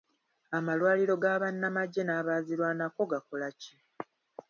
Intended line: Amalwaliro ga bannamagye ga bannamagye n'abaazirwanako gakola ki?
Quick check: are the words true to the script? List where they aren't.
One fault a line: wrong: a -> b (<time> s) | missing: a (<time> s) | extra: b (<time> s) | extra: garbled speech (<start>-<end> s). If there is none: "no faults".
missing: ga bannamagye (2.0 s)